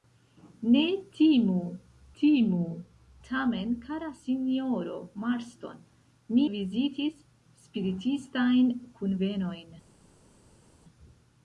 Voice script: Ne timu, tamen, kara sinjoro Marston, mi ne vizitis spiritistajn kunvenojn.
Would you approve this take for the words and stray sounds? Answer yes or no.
no